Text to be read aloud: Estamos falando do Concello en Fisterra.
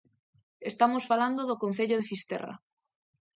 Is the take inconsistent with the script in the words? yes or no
yes